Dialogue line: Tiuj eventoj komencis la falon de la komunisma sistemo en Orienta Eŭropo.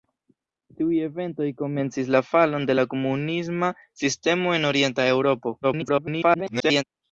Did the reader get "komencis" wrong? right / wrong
right